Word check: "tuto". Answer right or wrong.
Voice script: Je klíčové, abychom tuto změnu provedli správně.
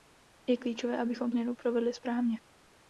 wrong